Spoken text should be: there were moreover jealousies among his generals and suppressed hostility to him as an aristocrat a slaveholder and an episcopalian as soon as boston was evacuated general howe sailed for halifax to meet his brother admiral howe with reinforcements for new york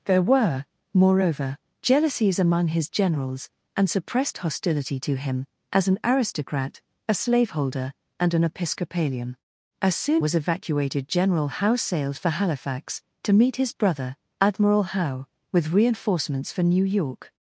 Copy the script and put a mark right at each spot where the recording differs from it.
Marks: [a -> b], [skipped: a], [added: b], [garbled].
there were moreover jealousies among his generals and suppressed hostility to him as an aristocrat a slaveholder and an episcopalian as soon [skipped: as boston] was evacuated general howe sailed for halifax to meet his brother admiral howe with reinforcements for new york